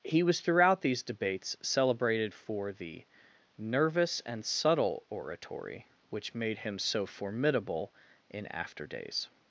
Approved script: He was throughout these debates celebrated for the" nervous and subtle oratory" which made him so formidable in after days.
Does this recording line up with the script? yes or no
yes